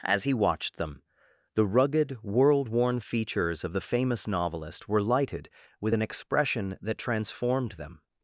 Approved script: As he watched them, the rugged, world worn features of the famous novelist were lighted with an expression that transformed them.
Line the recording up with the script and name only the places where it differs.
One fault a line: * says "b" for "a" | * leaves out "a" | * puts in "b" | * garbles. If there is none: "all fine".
all fine